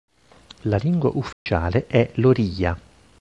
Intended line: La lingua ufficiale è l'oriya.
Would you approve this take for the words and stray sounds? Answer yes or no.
no